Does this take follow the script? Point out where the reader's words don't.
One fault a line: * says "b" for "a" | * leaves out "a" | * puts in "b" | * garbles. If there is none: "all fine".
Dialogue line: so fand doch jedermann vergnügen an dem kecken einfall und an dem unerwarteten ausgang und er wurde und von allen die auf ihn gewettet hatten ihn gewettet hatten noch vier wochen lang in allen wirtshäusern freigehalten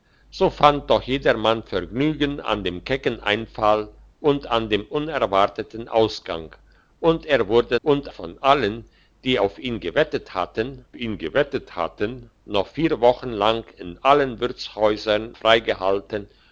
all fine